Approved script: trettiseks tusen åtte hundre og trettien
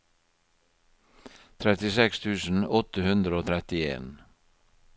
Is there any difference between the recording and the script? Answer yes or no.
no